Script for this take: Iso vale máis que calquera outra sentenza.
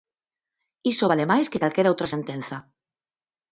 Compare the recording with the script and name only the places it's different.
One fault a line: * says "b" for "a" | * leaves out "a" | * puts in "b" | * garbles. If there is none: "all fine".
all fine